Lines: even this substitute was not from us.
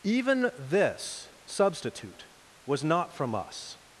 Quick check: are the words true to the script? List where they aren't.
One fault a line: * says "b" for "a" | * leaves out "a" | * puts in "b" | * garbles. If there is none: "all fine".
all fine